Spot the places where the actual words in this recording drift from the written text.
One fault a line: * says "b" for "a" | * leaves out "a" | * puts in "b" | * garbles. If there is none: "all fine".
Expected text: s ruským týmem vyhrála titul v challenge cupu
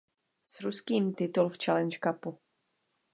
* leaves out "týmem vyhrála"